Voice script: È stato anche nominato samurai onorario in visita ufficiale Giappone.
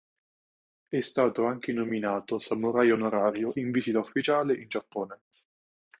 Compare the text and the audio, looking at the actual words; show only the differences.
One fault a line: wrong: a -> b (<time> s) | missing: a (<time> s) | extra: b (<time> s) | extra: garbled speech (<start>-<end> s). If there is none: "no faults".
extra: in (4.6 s)